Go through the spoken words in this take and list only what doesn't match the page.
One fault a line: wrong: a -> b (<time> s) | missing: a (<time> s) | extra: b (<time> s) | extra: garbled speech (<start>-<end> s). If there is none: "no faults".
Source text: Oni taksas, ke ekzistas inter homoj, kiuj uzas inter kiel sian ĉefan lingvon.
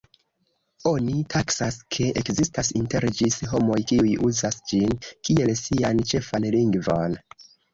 extra: ĝis (3.2 s)
wrong: inter -> ĝin (4.7 s)